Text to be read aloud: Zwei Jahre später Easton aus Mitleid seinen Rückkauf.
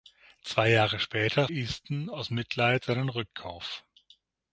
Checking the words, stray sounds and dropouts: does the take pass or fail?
pass